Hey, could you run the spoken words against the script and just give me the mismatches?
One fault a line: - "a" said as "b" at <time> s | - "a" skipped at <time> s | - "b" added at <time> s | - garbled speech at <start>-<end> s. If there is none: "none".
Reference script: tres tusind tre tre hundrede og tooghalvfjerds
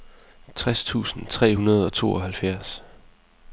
- "tre" skipped at 1.6 s